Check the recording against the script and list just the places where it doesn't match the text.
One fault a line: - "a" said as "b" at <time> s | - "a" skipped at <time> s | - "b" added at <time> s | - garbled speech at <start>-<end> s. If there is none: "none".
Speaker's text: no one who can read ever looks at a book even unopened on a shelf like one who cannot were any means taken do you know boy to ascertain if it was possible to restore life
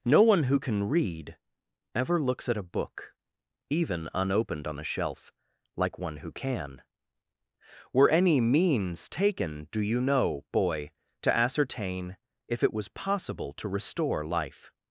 - "cannot" said as "can" at 6.3 s